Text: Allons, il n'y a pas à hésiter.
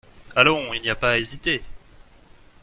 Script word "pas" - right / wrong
right